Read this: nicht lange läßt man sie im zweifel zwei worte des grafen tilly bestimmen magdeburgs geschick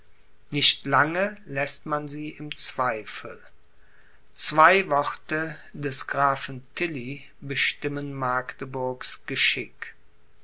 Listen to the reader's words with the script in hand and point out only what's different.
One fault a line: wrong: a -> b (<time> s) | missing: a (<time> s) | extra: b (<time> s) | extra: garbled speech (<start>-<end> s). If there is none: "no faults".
no faults